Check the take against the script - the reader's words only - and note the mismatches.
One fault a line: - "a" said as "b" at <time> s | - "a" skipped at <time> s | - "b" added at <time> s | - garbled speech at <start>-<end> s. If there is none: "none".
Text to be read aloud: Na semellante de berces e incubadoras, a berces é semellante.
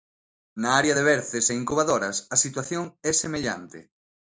- "semellante" said as "área" at 0.8 s
- "berces" said as "situación" at 2.4 s